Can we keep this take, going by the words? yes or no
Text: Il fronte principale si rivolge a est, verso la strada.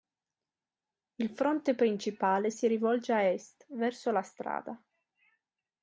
yes